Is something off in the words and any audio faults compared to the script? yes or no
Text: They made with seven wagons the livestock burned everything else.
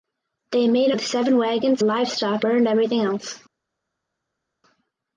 no